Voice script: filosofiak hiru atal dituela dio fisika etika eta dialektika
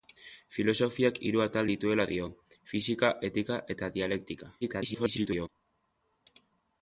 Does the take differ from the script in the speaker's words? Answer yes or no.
yes